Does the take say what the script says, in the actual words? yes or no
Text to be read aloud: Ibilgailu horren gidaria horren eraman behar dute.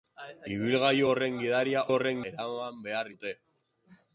yes